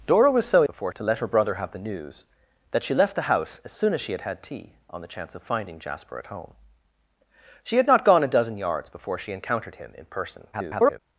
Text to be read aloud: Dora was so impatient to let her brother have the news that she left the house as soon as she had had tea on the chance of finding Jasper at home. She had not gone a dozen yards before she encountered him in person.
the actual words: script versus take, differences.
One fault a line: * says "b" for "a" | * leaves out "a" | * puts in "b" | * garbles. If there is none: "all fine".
* says "before" for "impatient"
* garbles